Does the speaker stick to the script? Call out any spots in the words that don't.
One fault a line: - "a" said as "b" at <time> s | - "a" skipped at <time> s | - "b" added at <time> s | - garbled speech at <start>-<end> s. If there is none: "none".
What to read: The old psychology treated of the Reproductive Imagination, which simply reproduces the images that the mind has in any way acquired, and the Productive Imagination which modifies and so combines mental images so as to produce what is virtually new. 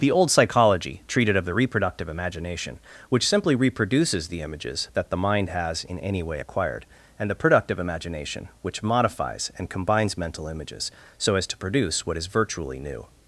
- "so" skipped at 9.7 s